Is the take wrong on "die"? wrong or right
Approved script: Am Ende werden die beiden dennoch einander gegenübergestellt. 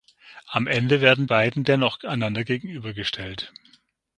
wrong